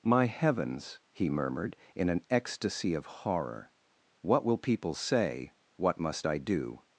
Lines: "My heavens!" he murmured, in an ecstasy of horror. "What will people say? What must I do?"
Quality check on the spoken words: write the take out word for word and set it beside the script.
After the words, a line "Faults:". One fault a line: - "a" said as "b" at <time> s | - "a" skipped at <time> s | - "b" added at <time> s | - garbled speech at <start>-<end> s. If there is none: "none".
"My heavens!" he murmured, in an ecstasy of horror. "What will people say? What must I do?"
Faults:
none